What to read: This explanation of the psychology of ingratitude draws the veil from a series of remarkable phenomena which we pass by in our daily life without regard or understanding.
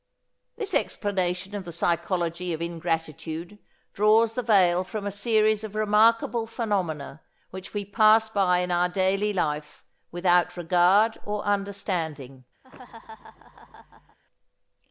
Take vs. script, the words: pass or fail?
pass